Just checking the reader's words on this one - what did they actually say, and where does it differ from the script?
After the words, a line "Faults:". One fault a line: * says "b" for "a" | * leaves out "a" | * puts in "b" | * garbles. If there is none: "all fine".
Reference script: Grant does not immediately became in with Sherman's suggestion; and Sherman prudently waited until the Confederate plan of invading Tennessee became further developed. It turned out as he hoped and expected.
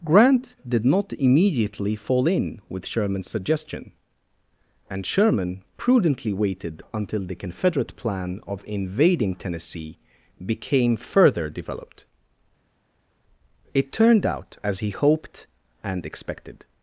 Grant did not immediately fall in with Sherman's suggestion; and Sherman prudently waited until the Confederate plan of invading Tennessee became further developed. It turned out as he hoped and expected.
Faults:
* says "did" for "does"
* says "fall" for "became"